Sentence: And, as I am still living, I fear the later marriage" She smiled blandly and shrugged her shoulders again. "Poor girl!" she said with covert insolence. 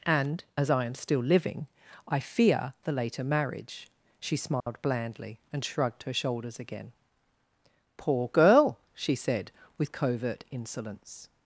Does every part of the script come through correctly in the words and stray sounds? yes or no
no